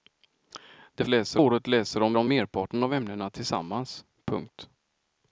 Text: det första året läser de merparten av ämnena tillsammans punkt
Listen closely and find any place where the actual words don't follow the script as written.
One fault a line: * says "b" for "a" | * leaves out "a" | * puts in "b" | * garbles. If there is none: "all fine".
* says "läser" for "första"
* puts in "de"